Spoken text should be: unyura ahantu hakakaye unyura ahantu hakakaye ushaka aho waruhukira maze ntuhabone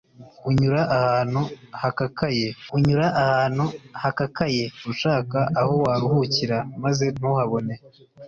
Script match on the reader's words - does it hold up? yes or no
yes